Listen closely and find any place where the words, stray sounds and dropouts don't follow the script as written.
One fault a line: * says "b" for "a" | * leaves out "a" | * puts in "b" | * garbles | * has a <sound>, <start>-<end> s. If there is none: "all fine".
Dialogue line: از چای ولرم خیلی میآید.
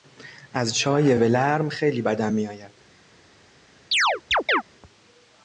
* puts in "بدم"
* has a chirp, 3.9-4.6 s